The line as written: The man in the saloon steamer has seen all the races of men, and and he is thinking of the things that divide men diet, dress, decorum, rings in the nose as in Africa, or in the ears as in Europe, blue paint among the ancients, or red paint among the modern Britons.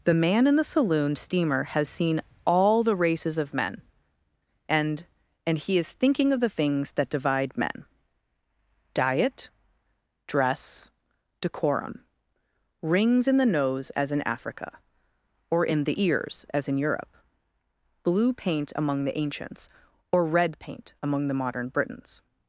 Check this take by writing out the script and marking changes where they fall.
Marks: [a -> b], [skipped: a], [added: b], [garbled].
The man in the saloon steamer has seen all the races of men, and and he is thinking of the things that divide men diet, dress, decorum, rings in the nose as in Africa, or in the ears as in Europe, blue paint among the ancients, or red paint among the modern Britons.